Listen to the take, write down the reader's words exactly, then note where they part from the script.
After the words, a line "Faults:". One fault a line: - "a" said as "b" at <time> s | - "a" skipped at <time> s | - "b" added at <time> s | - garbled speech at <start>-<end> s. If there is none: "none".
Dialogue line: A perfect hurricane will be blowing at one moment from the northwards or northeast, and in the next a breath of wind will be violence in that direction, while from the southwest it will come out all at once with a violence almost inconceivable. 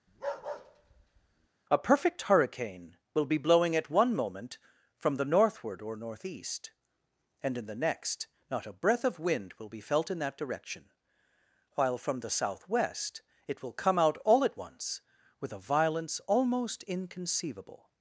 A perfect hurricane will be blowing at one moment from the northward or northeast, and in the next not a breath of wind will be felt in that direction, while from the southwest it will come out all at once with a violence almost inconceivable.
Faults:
- "northwards" said as "northward" at 5.3 s
- "not" added at 8.5 s
- "violence" said as "felt" at 9.8 s